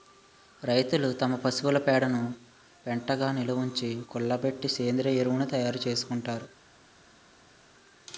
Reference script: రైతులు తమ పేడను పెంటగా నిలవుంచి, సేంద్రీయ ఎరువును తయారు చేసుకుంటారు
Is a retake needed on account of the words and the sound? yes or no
yes